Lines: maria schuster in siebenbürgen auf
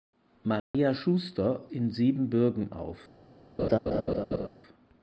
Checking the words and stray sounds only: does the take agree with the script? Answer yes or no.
no